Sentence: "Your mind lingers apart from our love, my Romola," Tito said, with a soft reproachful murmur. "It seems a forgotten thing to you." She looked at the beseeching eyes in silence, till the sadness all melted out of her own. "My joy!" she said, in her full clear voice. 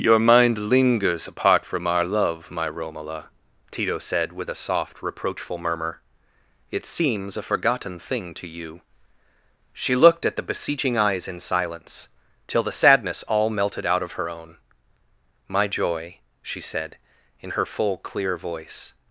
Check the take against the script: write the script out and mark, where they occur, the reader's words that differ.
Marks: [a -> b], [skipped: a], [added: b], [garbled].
"Your mind lingers apart from our love, my Romola," Tito said, with a soft reproachful murmur. "It seems a forgotten thing to you." She looked at the beseeching eyes in silence, till the sadness all melted out of her own. "My joy!" she said, in her full clear voice.